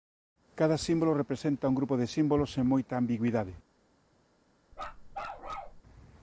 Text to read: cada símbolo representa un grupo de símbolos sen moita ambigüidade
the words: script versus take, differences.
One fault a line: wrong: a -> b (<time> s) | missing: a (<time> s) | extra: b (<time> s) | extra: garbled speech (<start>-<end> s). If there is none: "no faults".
no faults